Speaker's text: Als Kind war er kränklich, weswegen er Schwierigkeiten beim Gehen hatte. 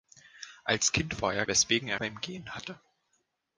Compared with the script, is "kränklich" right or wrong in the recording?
wrong